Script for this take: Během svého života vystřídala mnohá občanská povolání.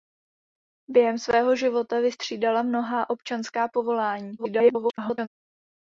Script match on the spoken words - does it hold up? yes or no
no